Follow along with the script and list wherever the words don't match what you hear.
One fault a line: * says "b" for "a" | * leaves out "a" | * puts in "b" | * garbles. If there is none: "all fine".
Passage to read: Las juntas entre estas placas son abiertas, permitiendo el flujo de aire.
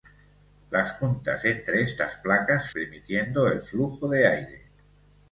* leaves out "son abiertas"